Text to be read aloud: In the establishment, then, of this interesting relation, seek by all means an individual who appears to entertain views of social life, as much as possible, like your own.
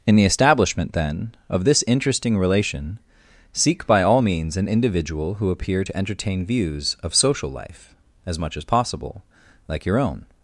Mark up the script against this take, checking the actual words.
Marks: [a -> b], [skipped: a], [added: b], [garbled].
In the establishment, then, of this interesting relation, seek by all means an individual who [appears -> appear] to entertain views of social life, as much as possible, like your own.